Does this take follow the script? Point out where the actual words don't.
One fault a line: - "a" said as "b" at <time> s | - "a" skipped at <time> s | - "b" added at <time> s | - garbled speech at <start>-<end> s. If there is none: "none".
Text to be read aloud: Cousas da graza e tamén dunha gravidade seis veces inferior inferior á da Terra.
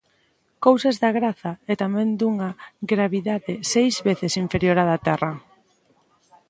- "inferior" skipped at 4.8 s